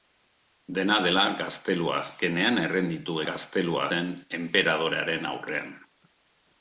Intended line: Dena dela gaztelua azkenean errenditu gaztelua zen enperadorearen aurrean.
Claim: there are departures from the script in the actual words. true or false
false